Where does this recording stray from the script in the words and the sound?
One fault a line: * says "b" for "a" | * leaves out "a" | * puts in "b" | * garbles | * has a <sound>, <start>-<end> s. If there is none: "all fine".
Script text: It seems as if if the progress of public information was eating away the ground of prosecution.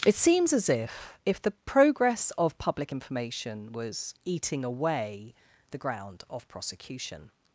all fine